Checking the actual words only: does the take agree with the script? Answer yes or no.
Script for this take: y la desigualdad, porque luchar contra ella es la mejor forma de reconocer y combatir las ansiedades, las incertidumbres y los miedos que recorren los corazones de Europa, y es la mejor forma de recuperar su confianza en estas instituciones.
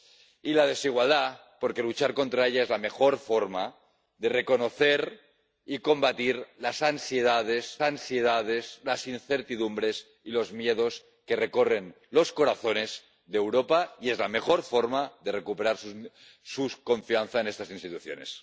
no